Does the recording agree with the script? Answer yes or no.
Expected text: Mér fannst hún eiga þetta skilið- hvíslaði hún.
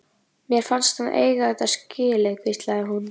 no